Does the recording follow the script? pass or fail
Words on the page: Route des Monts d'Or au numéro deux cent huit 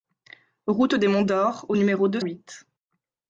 fail